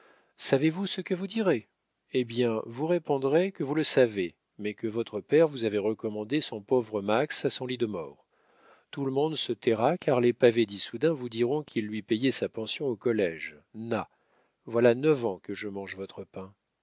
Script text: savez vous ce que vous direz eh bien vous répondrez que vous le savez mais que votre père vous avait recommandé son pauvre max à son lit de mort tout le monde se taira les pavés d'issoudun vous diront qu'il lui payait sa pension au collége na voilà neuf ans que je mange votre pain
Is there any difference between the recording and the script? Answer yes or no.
yes